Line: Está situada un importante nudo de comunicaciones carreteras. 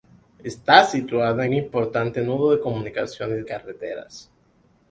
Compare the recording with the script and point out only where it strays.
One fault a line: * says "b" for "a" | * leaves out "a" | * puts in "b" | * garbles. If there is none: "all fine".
all fine